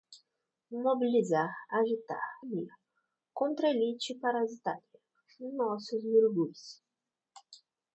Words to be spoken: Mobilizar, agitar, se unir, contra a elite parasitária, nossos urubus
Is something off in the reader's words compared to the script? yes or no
yes